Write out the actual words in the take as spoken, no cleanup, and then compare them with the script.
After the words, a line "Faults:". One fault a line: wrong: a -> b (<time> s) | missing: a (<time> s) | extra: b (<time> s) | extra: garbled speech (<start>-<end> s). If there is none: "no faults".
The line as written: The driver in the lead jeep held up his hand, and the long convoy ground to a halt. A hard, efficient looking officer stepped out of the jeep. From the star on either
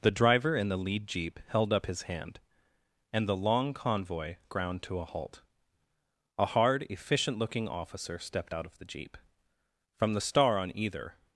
The driver in the lead jeep held up his hand, and the long convoy ground to a halt. A hard, efficient looking officer stepped out of the jeep. From the star on either
Faults:
no faults